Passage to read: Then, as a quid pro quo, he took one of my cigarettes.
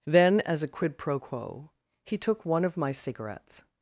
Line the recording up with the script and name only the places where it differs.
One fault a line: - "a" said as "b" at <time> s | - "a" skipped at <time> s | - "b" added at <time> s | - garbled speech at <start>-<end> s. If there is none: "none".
none